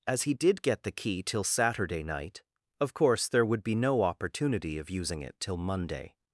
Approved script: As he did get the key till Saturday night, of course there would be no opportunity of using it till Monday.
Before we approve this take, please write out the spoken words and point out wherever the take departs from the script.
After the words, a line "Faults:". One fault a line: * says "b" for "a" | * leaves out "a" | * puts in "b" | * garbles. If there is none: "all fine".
As he did get the key till Saturday night, of course there would be no opportunity of using it till Monday.
Faults:
all fine